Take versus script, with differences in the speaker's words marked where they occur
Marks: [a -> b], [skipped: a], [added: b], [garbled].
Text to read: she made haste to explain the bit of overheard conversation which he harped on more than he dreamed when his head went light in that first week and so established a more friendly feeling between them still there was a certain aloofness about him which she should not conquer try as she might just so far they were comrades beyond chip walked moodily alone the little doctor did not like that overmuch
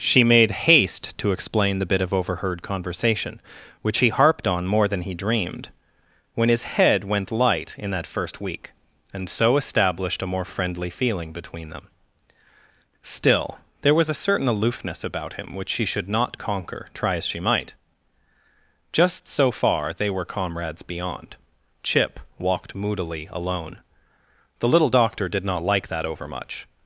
she made haste to explain the bit of overheard conversation which he harped on more than he dreamed when his head went light in that first week and so established a more friendly feeling between them still there was a certain aloofness about him which she should not conquer try as she might just so far they were comrades beyond chip walked moodily alone the little doctor did not like that overmuch